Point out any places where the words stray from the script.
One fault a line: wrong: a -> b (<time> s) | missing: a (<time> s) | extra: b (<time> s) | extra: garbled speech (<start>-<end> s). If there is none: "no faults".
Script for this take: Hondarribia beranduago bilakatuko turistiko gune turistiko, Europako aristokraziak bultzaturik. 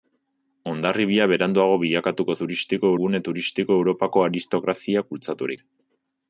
no faults